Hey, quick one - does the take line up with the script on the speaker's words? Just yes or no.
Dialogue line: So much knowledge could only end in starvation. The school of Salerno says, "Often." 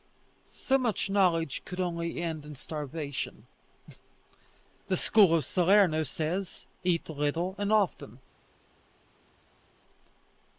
no